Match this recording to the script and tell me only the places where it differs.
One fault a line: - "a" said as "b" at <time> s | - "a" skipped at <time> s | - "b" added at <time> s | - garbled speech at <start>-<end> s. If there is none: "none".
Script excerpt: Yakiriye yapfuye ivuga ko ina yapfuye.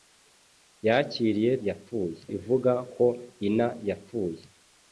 none